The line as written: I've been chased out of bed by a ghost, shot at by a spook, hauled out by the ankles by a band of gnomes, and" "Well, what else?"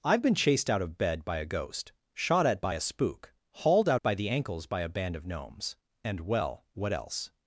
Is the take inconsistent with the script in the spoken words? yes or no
no